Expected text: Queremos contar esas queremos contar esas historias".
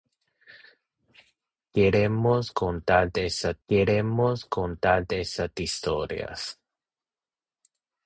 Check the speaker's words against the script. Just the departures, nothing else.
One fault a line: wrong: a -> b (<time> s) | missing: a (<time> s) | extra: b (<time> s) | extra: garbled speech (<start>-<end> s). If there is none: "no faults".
no faults